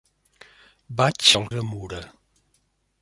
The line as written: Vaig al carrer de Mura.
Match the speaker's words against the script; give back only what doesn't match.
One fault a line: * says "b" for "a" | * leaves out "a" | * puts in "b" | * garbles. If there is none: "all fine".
* leaves out "carrer"